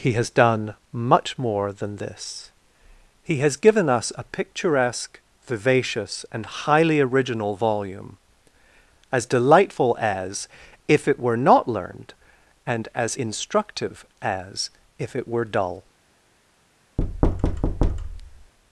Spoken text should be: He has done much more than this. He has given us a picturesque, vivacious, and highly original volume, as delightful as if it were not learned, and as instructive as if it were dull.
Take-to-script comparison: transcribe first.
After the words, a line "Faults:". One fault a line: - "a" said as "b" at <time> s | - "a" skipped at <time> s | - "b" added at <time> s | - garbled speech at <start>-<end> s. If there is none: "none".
He has done much more than this. He has given us a picturesque, vivacious, and highly original volume, as delightful as if it were not learned, and as instructive as if it were dull.
Faults:
none